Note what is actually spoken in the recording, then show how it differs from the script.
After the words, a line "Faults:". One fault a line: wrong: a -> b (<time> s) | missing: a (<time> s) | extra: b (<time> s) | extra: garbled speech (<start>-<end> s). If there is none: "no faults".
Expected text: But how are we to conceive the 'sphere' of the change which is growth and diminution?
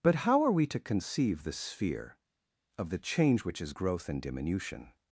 But how are we to conceive the 'sphere' of the change which is growth and diminution?
Faults:
no faults